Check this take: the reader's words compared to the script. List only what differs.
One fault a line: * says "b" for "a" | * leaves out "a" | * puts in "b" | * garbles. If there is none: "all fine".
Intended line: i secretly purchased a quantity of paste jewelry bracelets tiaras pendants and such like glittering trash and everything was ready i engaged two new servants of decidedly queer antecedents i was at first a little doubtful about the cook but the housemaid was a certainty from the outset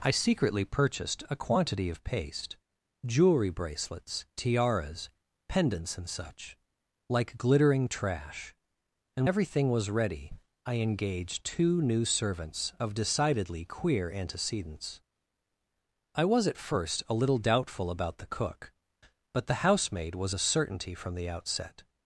all fine